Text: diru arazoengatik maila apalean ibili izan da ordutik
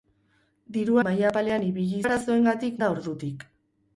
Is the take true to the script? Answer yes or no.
no